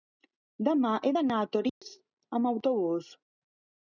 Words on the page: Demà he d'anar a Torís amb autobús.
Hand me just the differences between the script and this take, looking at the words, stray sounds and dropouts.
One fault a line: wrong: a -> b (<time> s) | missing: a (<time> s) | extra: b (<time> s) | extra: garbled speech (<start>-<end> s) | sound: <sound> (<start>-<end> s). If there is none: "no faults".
sound: dropout (1.7-1.8 s)